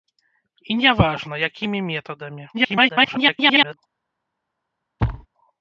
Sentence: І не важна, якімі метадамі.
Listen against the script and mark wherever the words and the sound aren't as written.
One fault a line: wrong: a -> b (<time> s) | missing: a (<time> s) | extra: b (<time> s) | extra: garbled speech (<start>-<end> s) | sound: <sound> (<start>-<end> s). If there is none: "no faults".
extra: garbled speech (2.5-3.8 s)
sound: thud (5.0-5.3 s)